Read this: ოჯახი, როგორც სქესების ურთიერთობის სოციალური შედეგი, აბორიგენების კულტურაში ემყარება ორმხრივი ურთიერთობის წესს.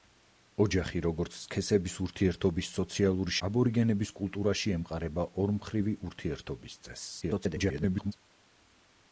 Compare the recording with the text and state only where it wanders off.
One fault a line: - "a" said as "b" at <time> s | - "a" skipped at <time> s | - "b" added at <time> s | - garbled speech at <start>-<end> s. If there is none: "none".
- "შედეგი" skipped at 3.4 s
- garbled speech at 7.2-8.1 s